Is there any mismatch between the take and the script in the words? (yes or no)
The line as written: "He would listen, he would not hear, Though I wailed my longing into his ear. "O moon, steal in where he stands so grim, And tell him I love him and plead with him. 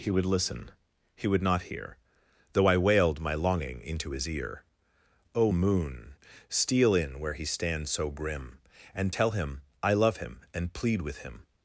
no